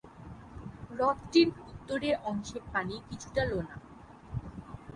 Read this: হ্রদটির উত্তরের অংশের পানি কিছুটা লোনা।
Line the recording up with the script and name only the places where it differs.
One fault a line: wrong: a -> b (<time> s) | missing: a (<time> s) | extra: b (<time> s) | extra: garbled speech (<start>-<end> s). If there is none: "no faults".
no faults